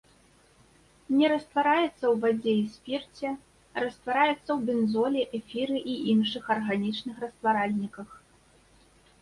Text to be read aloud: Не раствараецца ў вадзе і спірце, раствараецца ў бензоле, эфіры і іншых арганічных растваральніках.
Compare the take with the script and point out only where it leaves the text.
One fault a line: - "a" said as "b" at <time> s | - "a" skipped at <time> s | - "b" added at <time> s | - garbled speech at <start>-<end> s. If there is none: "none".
none